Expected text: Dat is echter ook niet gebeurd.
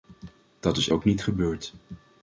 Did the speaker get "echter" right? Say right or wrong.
wrong